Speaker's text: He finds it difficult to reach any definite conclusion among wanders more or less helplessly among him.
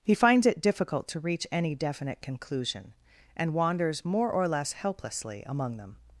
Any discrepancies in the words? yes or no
yes